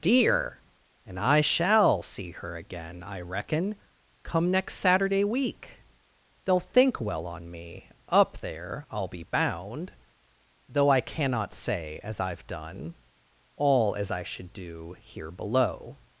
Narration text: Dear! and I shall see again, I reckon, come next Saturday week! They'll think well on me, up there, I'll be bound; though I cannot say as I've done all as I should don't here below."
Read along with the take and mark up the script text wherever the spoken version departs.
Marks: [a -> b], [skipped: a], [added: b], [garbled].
Dear! and I shall see [added: her] again, I reckon, come next Saturday week! They'll think well on me, up there, I'll be bound; though I cannot say as I've done all as I should [don't -> do] here below."